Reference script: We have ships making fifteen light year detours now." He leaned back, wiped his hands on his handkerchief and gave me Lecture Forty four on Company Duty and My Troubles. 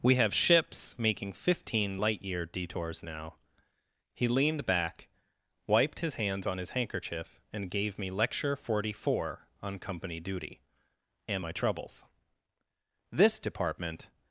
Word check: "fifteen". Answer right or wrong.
right